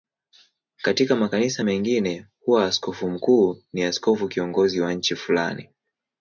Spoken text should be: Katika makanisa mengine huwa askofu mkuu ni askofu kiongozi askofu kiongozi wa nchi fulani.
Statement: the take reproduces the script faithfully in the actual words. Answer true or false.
false